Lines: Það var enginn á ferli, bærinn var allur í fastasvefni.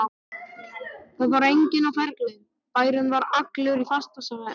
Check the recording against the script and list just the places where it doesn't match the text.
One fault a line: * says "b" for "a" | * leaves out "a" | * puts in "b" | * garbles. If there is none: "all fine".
all fine